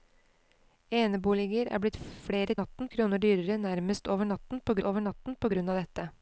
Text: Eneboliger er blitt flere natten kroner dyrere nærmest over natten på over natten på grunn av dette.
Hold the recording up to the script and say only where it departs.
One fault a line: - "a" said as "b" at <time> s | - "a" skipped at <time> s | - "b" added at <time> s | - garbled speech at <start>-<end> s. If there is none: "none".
none